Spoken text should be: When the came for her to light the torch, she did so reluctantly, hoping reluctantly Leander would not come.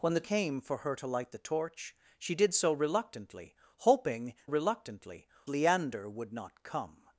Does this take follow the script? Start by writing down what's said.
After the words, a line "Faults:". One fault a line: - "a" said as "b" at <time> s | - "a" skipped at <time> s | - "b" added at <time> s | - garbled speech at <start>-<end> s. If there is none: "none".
When the came for her to light the torch, she did so reluctantly, hoping reluctantly Leander would not come.
Faults:
none